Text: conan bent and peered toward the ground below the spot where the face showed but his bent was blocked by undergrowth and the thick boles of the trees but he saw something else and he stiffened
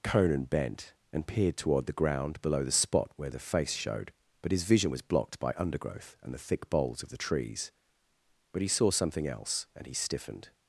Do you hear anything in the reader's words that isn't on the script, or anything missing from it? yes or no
yes